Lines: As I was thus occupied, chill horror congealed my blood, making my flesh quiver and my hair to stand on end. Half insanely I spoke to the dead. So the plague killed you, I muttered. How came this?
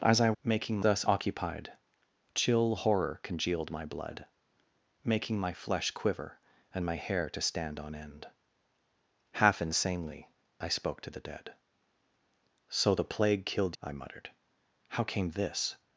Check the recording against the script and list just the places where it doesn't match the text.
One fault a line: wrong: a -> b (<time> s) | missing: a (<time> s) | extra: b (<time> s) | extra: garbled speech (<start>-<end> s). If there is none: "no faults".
wrong: was -> making (0.4 s)
missing: you (13.8 s)